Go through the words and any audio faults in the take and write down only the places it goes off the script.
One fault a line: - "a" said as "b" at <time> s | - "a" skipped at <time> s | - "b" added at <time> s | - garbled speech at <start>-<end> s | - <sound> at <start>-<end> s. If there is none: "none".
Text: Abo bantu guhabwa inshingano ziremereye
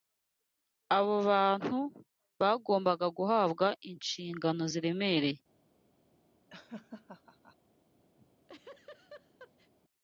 - "bagombaga" added at 2.4 s
- laugh at 6.5-7.6 s
- laugh at 8.2-9.7 s